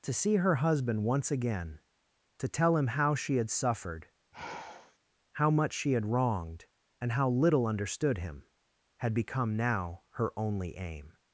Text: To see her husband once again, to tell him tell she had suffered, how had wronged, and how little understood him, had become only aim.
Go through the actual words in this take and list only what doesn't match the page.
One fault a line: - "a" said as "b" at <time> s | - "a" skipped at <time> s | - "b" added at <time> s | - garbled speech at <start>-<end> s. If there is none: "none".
- "tell" said as "how" at 2.9 s
- "much she" added at 5.5 s
- "now her" added at 9.6 s